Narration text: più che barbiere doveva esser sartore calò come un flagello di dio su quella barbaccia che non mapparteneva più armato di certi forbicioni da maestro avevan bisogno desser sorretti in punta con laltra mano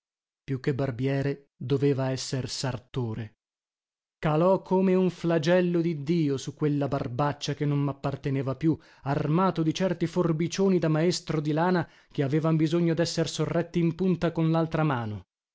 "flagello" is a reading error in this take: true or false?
false